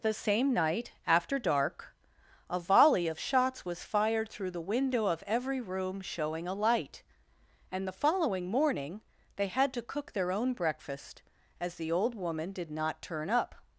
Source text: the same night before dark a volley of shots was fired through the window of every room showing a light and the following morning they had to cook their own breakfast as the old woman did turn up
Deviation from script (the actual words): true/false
true